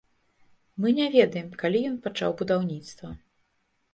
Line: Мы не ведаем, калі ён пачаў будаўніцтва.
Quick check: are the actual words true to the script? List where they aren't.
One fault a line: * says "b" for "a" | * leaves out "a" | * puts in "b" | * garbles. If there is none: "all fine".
all fine